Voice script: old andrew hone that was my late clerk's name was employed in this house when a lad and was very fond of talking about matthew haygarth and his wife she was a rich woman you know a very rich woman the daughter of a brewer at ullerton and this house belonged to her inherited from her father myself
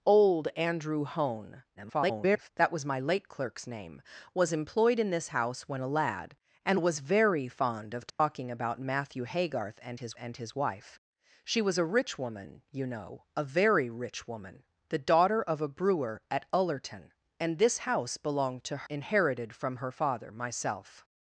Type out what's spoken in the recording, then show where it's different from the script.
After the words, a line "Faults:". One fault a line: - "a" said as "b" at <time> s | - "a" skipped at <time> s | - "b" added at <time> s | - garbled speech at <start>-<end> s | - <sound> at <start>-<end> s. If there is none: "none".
old andrew hone [garbled] that was my late clerk's name was employed in this house when a lad and was very fond of talking about matthew haygarth and his and his wife she was a rich woman you know a very rich woman the daughter of a brewer at ullerton and this house belonged to inherited from her father myself
Faults:
- garbled speech at 1.8-2.5 s
- dropout at 8.1-8.2 s
- "and his" added at 10.2 s
- "her" skipped at 18.9 s